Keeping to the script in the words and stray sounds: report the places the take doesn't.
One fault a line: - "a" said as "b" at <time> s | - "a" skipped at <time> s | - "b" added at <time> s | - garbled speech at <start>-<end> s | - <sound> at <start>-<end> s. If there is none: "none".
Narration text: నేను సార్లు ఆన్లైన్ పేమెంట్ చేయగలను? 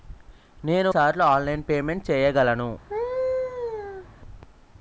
- laugh at 2.9-4.1 s